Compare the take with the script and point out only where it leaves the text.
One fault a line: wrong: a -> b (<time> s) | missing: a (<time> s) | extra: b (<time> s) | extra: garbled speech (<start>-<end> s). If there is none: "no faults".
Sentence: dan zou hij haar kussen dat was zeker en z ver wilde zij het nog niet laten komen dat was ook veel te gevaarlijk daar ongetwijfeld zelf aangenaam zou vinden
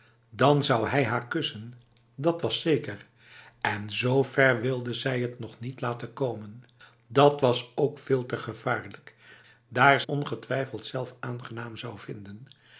no faults